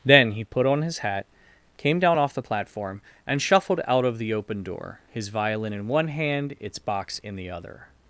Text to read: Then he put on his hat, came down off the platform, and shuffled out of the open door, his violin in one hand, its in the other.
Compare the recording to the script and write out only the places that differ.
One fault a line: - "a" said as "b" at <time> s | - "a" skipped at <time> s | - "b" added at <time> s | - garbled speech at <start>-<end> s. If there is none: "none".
- "box" added at 6.8 s